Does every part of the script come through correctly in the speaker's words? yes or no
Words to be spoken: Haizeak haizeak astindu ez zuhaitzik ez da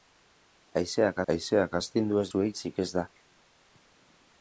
yes